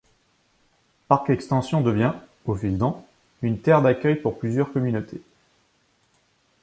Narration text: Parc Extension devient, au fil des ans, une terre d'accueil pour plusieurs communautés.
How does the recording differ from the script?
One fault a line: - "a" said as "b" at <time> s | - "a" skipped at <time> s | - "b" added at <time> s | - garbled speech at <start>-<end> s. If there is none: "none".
- "des" skipped at 2.8 s